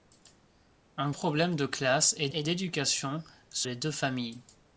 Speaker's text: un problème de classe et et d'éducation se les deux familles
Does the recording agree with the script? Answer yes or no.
yes